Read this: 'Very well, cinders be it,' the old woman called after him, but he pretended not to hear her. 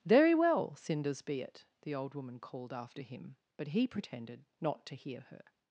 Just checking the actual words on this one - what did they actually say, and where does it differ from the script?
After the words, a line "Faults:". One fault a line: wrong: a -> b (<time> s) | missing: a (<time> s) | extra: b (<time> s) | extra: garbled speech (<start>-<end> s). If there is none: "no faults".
'Very well, cinders be it,' the old woman called after him, but he pretended not to hear her.
Faults:
no faults